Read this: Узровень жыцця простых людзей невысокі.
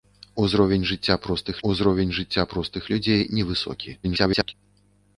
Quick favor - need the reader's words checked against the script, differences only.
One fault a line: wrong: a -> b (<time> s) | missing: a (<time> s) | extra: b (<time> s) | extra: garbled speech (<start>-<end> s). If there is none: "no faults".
extra: узровень жыцця простых (1.7 s)
extra: garbled speech (4.0-4.5 s)